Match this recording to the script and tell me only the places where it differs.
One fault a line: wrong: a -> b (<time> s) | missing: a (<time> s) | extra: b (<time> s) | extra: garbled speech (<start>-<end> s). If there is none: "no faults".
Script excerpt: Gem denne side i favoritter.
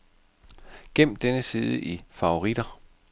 no faults